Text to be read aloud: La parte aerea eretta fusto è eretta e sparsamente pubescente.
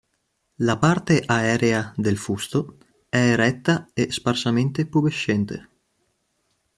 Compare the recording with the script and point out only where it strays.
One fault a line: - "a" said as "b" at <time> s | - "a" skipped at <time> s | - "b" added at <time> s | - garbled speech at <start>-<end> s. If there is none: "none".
- "eretta" said as "del" at 2.0 s